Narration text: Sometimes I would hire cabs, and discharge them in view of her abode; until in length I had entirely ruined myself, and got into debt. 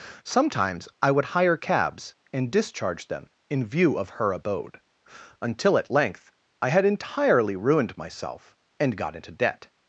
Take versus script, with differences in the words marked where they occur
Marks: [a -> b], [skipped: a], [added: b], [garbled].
Sometimes I would hire cabs, and discharge them in view of her abode; until [in -> at] length I had entirely ruined myself, and got into debt.